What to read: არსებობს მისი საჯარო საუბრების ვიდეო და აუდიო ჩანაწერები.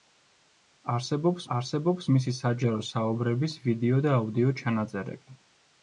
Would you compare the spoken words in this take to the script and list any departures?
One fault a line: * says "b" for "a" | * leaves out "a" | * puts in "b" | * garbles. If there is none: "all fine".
* puts in "არსებობს"